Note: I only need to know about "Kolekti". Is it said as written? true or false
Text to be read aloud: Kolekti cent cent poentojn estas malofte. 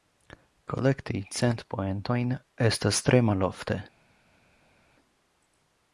true